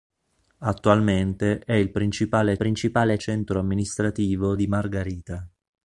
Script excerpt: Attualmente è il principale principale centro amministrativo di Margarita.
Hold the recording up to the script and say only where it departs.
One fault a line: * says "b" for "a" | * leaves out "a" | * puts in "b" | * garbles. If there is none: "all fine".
all fine